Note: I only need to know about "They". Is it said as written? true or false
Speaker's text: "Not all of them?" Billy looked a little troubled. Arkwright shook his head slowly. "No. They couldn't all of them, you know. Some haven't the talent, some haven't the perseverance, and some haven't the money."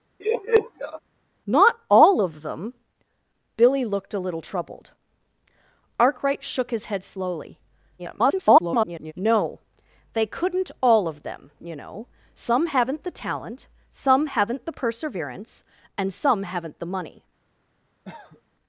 true